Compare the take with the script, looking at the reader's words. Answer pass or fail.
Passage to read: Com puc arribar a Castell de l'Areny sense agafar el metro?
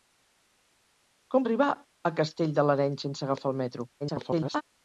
fail